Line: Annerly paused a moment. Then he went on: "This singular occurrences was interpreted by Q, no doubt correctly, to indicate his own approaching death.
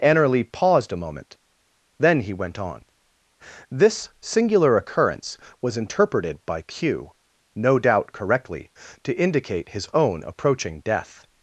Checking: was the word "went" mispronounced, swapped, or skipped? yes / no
no